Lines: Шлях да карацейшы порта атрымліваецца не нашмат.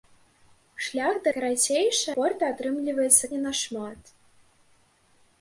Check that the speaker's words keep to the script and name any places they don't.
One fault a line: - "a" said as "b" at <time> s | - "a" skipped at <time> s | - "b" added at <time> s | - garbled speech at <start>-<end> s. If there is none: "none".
none